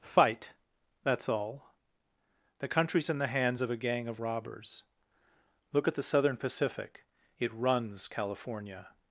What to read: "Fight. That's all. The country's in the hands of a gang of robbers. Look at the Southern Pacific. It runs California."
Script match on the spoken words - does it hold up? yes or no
yes